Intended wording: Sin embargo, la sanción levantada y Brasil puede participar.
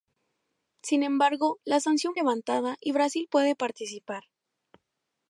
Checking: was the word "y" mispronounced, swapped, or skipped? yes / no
no